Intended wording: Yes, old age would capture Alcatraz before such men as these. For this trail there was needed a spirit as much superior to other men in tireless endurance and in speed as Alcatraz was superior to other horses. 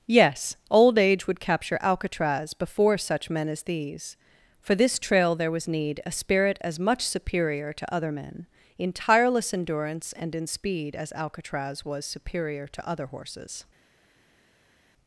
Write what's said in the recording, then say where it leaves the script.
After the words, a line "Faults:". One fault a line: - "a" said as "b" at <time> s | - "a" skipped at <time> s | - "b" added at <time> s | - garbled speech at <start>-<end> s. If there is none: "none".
Yes, old age would capture Alcatraz before such men as these. For this trail there was need a spirit as much superior to other men in tireless endurance and in speed as Alcatraz was superior to other horses.
Faults:
- "needed" said as "need" at 5.7 s